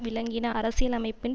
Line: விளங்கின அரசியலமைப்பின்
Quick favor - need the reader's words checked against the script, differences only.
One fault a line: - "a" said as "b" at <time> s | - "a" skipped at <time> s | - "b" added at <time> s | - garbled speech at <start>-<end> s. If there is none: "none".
none